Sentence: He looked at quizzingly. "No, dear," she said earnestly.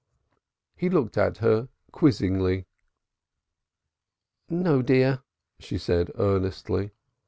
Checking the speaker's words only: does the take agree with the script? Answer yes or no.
no